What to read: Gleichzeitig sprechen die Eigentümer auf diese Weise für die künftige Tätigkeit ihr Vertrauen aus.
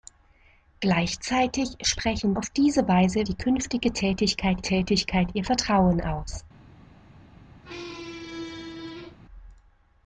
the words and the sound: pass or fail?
fail